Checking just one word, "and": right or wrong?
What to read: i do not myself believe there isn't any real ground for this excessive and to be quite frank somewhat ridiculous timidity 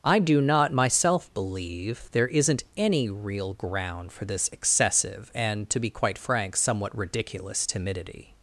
right